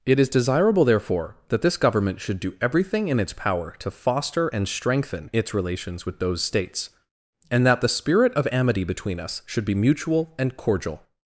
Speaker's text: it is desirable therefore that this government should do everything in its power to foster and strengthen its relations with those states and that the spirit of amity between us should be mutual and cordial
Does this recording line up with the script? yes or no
yes